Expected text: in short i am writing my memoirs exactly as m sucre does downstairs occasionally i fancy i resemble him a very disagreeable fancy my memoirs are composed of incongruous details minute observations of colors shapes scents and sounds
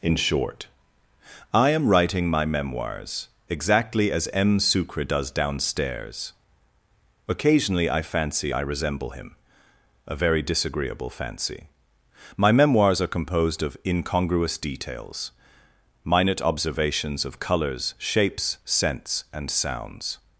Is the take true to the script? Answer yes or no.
yes